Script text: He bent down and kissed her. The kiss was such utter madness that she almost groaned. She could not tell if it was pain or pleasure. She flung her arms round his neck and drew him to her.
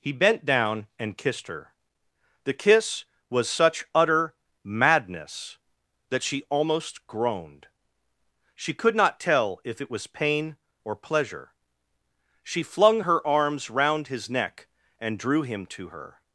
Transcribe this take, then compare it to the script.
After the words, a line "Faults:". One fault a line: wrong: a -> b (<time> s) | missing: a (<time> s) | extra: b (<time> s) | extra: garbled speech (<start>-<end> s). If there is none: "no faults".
He bent down and kissed her. The kiss was such utter madness that she almost groaned. She could not tell if it was pain or pleasure. She flung her arms round his neck and drew him to her.
Faults:
no faults